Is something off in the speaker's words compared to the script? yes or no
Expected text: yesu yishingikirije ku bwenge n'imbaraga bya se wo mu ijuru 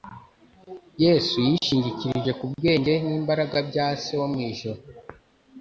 no